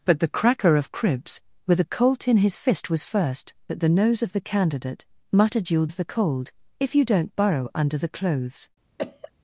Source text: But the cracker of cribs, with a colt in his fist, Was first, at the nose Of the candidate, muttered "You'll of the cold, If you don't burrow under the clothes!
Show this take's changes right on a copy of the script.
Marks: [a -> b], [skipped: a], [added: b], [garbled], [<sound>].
But the cracker of cribs, with a colt in his fist, Was first, at the nose Of the candidate, muttered "You'll of the cold, If you don't burrow under the clothes! [cough]